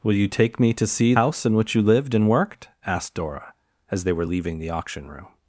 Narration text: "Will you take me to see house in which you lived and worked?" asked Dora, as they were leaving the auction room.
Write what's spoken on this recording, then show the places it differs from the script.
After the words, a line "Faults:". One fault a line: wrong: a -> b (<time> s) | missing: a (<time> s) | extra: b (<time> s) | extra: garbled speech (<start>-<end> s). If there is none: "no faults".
"Will you take me to see house in which you lived and worked?" asked Dora, as they were leaving the auction room.
Faults:
no faults